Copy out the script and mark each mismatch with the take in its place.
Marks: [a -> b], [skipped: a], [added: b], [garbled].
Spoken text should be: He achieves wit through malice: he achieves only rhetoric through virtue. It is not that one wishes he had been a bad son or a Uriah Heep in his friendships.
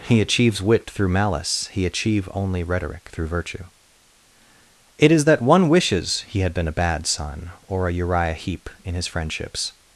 He achieves wit through malice: he [achieves -> achieve] only rhetoric through virtue. It is [skipped: not] that one wishes he had been a bad son or a Uriah Heep in his friendships.